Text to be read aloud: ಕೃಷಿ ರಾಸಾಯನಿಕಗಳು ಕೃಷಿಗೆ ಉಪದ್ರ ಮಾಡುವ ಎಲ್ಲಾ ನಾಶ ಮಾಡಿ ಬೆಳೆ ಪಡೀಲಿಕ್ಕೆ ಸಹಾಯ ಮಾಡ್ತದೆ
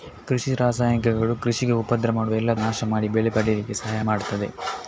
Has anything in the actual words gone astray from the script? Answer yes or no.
no